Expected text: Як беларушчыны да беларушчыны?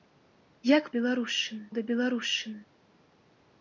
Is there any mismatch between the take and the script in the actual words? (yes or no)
no